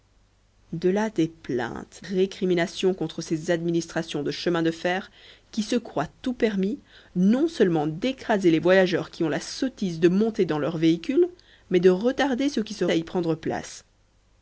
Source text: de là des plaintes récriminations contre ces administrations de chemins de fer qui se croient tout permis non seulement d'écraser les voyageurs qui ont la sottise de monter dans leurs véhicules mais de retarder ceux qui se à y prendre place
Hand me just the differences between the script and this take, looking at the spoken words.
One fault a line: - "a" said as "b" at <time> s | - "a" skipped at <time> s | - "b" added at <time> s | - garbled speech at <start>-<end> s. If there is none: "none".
none